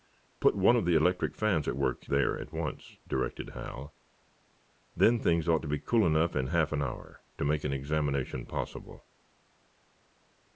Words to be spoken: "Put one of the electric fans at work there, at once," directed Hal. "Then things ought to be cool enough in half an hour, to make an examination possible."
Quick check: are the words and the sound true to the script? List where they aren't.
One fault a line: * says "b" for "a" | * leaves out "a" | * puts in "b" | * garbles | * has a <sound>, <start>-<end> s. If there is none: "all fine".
all fine